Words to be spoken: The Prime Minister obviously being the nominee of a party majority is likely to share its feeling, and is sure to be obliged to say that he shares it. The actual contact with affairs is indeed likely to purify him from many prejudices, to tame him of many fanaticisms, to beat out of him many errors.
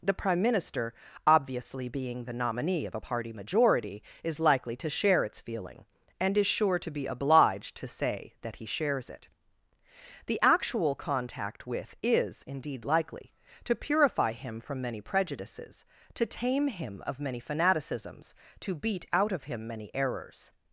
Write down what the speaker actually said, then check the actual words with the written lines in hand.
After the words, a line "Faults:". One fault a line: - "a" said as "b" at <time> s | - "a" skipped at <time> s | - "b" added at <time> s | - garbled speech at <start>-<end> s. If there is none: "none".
The Prime Minister obviously being the nominee of a party majority is likely to share its feeling, and is sure to be obliged to say that he shares it. The actual contact with is indeed likely to purify him from many prejudices, to tame him of many fanaticisms, to beat out of him many errors.
Faults:
- "affairs" skipped at 12.0 s